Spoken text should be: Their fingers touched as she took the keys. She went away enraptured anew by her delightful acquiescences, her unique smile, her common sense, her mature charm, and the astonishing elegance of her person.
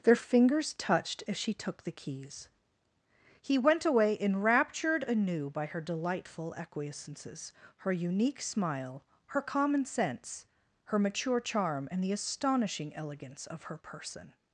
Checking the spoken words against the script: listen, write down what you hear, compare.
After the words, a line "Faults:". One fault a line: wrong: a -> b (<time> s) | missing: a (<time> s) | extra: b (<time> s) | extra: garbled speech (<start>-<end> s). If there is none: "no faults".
Their fingers touched as she took the keys. He went away enraptured anew by her delightful acquiescences, her unique smile, her common sense, her mature charm, and the astonishing elegance of her person.
Faults:
wrong: She -> He (3.4 s)